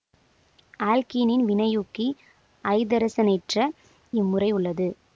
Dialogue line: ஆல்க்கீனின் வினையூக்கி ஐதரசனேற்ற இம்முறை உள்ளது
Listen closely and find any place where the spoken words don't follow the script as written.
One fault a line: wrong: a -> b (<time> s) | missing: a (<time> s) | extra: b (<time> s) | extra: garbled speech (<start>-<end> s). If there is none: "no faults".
no faults